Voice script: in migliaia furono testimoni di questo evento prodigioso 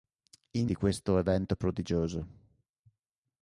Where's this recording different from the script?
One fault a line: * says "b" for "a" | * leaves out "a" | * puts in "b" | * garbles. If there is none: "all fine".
* leaves out "migliaia furono testimoni"